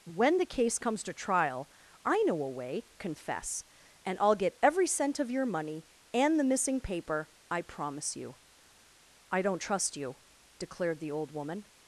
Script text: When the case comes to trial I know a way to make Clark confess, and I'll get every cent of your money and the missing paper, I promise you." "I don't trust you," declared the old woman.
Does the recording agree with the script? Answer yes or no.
no